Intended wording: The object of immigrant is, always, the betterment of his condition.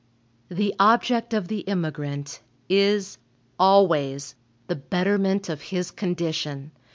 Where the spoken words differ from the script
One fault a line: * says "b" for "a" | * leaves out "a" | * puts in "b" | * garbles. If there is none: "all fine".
* puts in "the"